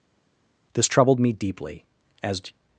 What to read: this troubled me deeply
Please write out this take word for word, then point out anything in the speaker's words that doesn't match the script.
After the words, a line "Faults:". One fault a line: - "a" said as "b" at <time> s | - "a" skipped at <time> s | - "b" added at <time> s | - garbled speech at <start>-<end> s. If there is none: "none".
this troubled me deeply as
Faults:
- "as" added at 2.2 s